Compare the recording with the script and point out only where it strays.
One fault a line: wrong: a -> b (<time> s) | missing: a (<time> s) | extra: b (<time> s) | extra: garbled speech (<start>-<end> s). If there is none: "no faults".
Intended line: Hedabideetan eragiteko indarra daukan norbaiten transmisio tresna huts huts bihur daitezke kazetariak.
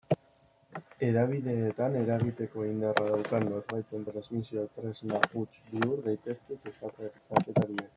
missing: huts (5.5 s)